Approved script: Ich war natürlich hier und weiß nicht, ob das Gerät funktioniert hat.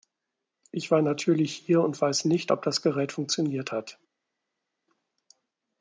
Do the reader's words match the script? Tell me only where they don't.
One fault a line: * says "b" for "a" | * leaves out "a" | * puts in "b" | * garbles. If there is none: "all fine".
all fine